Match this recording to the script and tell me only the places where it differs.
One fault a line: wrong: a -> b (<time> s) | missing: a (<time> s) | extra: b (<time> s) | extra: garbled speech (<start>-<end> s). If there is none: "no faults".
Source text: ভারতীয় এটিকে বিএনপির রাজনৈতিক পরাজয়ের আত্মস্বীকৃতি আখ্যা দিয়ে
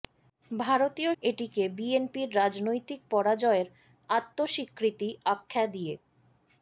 no faults